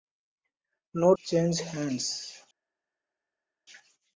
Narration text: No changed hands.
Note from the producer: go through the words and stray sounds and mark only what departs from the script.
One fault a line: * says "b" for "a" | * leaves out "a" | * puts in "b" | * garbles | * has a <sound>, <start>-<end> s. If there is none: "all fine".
all fine